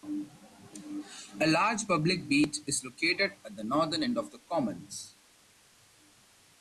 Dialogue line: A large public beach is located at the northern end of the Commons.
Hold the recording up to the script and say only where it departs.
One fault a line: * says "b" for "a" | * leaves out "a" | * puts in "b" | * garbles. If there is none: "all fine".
all fine